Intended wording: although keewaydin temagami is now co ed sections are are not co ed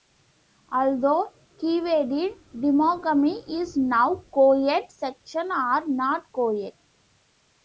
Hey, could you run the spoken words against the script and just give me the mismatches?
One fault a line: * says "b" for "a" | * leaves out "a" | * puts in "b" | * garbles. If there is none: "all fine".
* leaves out "are"